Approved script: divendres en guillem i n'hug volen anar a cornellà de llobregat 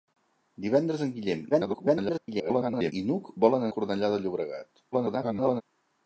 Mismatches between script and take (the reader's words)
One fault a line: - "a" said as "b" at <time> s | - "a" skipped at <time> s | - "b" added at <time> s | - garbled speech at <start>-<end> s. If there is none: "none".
- garbled speech at 1.5-2.9 s
- "anar" skipped at 3.7 s
- garbled speech at 4.9-5.6 s